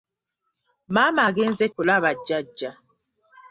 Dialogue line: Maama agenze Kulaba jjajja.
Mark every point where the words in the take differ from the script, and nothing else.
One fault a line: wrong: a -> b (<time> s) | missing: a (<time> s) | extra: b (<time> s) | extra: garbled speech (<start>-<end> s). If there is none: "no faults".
no faults